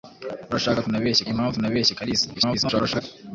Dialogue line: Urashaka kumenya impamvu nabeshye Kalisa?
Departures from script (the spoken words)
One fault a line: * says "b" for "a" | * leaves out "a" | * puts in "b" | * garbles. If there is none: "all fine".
* says "nabeshye" for "kumenya"
* garbles